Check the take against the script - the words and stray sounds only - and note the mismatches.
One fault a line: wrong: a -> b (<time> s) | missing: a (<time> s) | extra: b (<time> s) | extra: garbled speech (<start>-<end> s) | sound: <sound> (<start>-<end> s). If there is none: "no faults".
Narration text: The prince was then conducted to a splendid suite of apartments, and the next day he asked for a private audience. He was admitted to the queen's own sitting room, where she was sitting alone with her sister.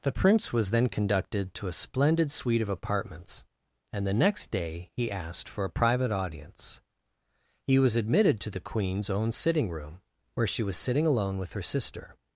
no faults